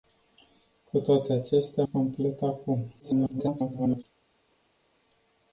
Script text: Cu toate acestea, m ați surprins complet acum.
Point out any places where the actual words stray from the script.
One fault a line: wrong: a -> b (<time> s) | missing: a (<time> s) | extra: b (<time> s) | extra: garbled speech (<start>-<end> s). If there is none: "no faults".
missing: m ați surprins (1.8 s)
extra: garbled speech (3.0-4.0 s)